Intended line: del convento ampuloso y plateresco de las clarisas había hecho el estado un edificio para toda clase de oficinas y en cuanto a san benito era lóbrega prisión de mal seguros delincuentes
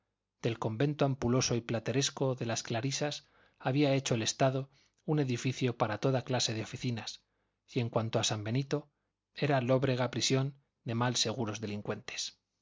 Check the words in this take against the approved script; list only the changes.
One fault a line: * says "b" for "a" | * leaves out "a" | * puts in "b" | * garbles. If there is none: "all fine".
all fine